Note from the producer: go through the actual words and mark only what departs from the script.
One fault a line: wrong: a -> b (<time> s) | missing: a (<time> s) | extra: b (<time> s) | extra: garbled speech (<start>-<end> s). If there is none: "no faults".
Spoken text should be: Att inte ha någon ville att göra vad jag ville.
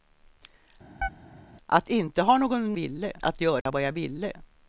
no faults